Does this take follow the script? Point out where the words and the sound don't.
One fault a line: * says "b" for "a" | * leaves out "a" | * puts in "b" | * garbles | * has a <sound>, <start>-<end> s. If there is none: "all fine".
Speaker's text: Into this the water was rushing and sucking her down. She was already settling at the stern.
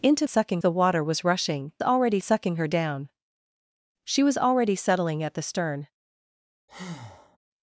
* says "sucking" for "this"
* says "already" for "and"
* has a breath, 6.7-7.4 s